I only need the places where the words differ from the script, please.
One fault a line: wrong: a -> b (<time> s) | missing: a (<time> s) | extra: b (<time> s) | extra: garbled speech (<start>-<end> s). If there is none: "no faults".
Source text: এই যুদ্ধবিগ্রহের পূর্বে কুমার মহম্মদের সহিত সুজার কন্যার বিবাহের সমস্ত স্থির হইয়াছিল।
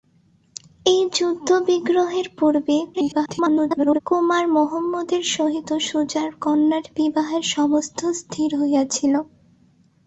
extra: garbled speech (2.9-4.0 s)